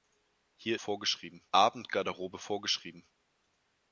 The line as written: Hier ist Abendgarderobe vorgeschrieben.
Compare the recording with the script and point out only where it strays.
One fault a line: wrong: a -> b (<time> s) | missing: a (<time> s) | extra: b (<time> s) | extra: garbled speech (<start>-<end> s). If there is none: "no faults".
wrong: ist -> vorgeschrieben (0.7 s)